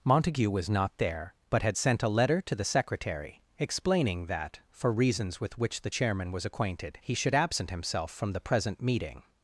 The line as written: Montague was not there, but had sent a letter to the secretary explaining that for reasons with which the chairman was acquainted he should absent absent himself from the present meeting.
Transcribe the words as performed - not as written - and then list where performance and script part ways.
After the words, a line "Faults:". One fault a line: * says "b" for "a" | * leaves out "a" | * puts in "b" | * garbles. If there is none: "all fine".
Montague was not there, but had sent a letter to the secretary explaining that for reasons with which the chairman was acquainted he should absent himself from the present meeting.
Faults:
* leaves out "absent"